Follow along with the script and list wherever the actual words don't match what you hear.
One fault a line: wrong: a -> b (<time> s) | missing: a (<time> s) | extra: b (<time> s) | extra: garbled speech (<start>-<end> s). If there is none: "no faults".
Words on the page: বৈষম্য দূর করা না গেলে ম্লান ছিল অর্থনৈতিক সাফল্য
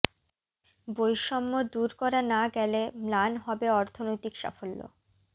wrong: ছিল -> হবে (3.5 s)